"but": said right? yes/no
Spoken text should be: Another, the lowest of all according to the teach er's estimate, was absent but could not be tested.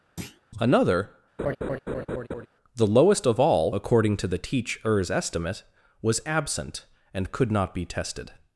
no